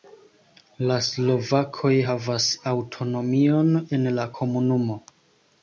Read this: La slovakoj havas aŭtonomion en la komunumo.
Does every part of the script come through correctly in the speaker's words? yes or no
yes